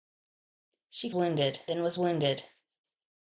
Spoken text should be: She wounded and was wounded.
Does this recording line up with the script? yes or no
yes